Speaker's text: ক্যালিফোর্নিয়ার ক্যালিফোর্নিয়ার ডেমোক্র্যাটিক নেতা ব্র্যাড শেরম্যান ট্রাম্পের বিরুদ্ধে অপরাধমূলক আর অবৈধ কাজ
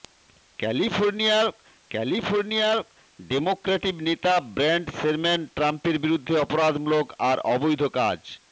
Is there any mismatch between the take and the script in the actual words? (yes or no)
no